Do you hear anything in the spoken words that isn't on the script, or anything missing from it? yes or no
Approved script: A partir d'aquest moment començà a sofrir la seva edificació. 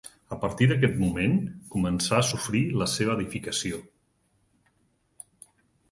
no